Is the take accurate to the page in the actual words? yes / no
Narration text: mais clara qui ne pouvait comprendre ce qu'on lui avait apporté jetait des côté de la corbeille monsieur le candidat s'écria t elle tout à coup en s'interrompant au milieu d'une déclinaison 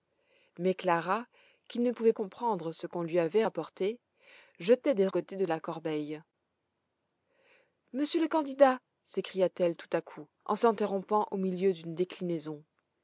yes